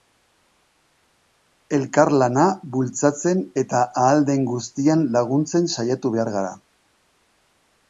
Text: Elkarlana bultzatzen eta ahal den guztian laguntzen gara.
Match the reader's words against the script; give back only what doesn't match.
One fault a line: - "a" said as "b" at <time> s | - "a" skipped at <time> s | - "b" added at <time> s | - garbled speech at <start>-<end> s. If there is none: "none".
- "saiatu behar" added at 5.8 s